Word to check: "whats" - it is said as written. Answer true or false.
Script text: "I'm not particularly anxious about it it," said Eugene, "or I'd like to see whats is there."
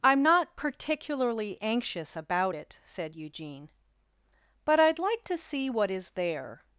false